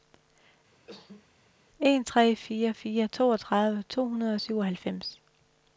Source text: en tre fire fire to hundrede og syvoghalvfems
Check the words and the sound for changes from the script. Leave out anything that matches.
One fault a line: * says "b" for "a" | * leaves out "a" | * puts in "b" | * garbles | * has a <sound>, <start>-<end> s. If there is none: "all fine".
* has a cough, 0.7-1.3 s
* puts in "toogtredive"